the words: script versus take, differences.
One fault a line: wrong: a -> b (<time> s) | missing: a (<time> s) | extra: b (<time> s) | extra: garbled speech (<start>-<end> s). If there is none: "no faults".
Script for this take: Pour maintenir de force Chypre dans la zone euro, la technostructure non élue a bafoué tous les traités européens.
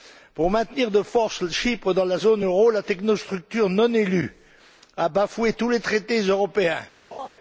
no faults